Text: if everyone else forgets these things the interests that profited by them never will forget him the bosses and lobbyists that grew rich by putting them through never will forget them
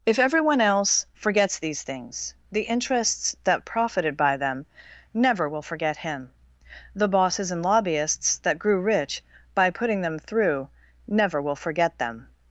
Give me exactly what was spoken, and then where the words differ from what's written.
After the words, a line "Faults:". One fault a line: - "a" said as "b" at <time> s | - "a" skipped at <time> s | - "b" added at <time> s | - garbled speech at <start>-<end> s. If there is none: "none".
if everyone else forgets these things the interests that profited by them never will forget him the bosses and lobbyists that grew rich by putting them through never will forget them
Faults:
none